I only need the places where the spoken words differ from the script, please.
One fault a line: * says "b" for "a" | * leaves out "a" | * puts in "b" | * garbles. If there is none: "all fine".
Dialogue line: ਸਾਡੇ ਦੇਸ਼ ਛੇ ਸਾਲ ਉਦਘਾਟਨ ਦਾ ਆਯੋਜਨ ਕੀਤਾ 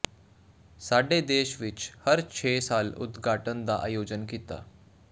* puts in "ਵਿਚ ਹਰ"